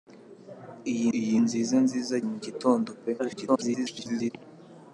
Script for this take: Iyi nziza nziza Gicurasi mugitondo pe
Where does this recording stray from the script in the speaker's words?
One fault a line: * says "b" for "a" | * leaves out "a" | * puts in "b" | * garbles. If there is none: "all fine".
* puts in "iyi"
* leaves out "Gicurasi"
* garbles